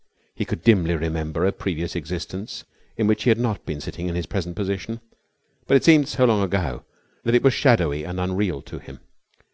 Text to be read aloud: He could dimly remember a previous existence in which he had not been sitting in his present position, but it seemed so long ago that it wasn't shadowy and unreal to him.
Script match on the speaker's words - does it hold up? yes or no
no